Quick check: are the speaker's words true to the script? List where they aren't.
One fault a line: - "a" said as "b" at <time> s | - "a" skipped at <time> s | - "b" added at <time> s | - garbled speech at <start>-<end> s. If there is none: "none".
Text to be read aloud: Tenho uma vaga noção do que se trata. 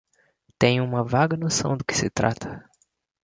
none